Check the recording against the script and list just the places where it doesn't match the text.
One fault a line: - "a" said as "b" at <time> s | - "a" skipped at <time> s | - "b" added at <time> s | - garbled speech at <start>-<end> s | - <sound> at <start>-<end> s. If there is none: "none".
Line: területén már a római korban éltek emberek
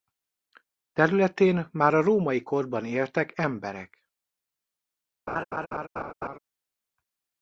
- laugh at 5.3-6.4 s